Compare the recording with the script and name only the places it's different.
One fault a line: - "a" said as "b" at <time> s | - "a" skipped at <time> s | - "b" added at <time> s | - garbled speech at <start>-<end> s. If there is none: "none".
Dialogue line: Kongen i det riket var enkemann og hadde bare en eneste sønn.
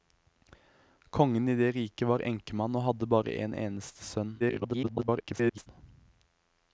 - garbled speech at 4.4-5.7 s